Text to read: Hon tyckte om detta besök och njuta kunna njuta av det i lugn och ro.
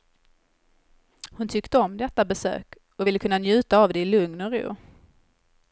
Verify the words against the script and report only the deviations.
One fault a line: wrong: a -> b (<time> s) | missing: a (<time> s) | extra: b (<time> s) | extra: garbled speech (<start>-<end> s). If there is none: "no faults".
wrong: njuta -> ville (3.1 s)